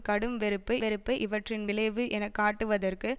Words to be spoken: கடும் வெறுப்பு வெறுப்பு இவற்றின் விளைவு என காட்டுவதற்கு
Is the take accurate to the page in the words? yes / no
yes